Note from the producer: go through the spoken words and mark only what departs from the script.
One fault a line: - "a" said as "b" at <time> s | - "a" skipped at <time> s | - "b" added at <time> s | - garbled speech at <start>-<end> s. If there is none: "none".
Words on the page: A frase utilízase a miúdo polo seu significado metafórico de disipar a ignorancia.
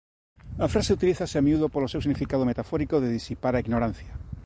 none